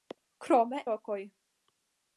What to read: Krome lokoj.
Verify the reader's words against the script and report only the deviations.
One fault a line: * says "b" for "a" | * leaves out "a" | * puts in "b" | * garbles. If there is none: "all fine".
all fine